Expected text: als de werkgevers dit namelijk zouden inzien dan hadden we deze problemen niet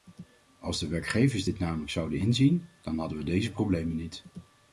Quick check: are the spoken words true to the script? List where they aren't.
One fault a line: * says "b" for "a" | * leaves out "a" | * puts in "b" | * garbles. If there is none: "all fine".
all fine